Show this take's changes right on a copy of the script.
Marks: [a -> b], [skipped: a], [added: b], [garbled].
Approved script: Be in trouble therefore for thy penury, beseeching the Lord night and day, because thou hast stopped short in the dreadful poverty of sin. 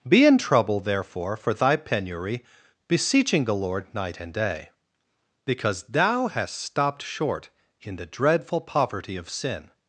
Be in trouble therefore for thy penury, beseeching the Lord night and day, because thou hast stopped short in the dreadful poverty of sin.